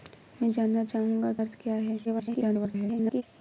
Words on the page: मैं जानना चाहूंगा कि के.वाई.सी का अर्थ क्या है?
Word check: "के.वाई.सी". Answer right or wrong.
wrong